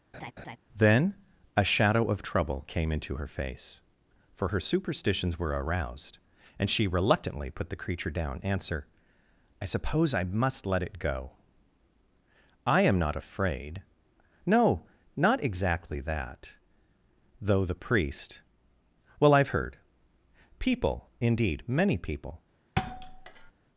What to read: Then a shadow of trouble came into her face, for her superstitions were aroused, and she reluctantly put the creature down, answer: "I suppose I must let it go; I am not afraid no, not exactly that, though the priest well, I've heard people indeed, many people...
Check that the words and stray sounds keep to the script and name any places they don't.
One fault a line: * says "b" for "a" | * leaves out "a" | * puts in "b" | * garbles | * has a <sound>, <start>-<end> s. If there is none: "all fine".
* has a laugh, 0.1-0.6 s
* has a thud, 22.8-23.5 s